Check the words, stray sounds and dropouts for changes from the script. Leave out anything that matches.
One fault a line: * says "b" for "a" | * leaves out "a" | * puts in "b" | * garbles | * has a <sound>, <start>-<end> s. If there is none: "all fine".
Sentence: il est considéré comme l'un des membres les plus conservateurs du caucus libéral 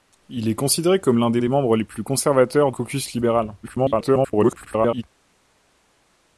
* puts in "des"
* leaves out "du"
* garbles